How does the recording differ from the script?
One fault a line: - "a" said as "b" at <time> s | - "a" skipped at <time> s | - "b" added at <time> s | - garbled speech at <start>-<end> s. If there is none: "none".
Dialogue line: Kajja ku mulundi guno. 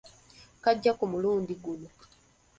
none